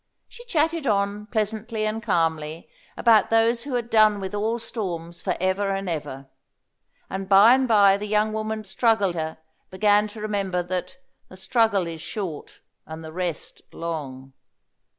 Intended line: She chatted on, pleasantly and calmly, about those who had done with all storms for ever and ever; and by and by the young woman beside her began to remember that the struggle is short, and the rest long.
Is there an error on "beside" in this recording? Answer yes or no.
yes